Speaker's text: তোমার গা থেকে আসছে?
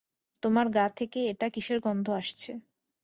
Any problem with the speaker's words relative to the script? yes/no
yes